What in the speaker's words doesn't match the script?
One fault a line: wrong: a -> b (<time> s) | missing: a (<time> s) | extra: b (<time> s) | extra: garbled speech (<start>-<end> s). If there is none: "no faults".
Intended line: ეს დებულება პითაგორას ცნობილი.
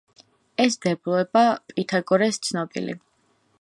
no faults